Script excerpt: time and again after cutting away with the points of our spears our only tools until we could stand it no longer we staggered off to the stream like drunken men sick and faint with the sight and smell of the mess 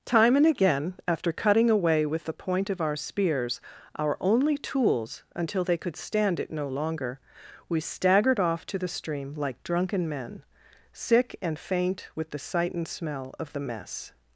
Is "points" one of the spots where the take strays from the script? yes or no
yes